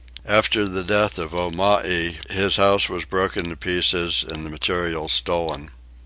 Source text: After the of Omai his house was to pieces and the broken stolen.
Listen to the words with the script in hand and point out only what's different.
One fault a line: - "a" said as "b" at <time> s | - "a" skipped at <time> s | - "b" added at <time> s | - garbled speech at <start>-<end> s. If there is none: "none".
- "death" added at 0.8 s
- "broken" added at 3.0 s
- "broken" said as "materials" at 4.5 s